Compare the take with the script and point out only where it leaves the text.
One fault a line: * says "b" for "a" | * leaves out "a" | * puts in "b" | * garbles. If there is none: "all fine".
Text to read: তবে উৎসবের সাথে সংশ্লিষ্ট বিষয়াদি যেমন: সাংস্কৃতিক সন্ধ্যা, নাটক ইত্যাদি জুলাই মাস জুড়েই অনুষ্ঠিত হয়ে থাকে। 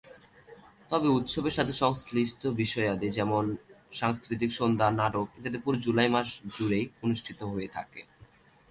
* puts in "পুরো"